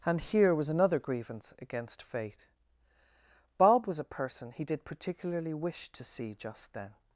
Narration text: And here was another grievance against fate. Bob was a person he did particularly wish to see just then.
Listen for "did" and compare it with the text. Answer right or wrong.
right